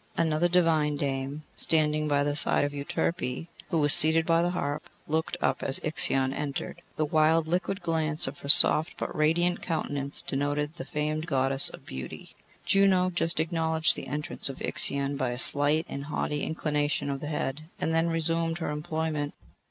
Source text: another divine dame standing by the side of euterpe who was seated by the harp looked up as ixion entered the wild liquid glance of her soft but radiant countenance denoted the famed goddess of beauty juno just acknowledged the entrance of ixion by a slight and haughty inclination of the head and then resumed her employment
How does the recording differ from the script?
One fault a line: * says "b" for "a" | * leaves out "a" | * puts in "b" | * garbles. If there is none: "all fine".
all fine